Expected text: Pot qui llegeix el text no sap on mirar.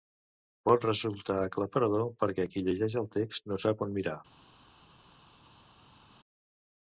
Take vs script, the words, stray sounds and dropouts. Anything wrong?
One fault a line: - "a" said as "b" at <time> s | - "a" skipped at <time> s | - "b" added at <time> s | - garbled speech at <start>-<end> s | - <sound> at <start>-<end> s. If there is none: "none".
- "resultar aclaparador perquè" added at 0.9 s